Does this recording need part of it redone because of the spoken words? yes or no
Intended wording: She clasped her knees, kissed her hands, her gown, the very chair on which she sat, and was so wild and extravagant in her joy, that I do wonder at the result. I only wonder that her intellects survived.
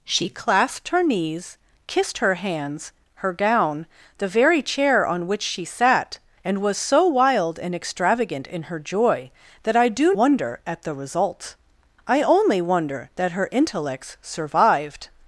no